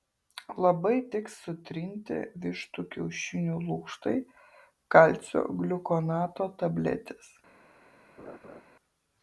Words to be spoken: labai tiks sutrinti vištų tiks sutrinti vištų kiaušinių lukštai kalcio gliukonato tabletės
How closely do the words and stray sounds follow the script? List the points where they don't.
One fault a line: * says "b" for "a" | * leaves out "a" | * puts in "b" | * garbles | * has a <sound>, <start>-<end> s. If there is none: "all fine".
* leaves out "tiks sutrinti vištų"
* has a laugh, 8.2-8.6 s